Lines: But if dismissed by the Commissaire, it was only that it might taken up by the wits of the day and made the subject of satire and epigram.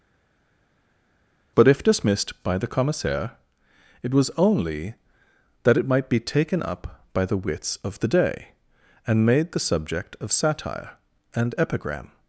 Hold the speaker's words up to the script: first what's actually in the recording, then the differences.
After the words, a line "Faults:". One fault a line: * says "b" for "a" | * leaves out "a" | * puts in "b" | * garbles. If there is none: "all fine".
But if dismissed by the Commissaire, it was only that it might be taken up by the wits of the day and made the subject of satire and epigram.
Faults:
* puts in "be"